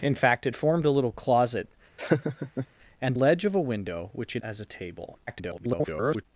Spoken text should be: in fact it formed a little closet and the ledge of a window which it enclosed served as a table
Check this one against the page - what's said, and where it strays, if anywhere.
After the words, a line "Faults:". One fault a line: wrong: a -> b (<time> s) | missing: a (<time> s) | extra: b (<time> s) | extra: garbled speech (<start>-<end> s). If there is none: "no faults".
in fact it formed a little closet and ledge of a window which it as a table [garbled]
Faults:
missing: the (3.1 s)
missing: enclosed served (4.4 s)
extra: garbled speech (5.3-6.3 s)